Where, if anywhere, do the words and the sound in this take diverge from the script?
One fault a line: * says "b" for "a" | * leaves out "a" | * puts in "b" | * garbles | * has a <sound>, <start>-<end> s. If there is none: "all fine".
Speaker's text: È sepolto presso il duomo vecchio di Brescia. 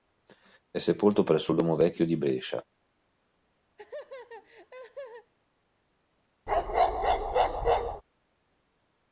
* has a laugh, 3.8-5.3 s
* has a bark, 6.5-8.0 s